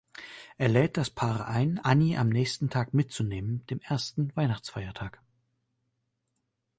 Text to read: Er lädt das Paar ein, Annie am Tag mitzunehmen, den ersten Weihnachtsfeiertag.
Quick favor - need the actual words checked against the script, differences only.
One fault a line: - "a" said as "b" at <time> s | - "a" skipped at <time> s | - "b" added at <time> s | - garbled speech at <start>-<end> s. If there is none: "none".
- "nächsten" added at 2.3 s
- "den" said as "dem" at 3.6 s